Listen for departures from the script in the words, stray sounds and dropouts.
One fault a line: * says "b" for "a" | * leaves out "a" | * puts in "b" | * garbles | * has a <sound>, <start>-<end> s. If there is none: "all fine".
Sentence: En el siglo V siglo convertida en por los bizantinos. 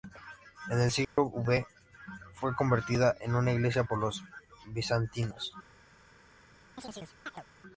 * has a dropout, 1.0-1.2 s
* says "fue" for "siglo"
* puts in "una iglesia"
* has a chirp, 6.8-7.4 s